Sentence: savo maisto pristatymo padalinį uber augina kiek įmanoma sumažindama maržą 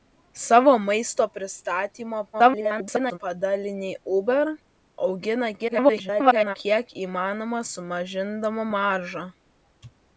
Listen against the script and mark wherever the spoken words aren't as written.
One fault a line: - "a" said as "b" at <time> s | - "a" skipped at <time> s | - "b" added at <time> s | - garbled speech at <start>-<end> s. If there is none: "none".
- garbled speech at 2.3-3.2 s
- garbled speech at 5.6-6.6 s